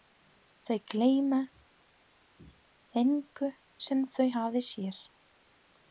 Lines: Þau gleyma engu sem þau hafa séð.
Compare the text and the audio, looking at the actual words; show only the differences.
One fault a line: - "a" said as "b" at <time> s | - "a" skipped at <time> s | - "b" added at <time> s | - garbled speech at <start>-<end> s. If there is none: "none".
none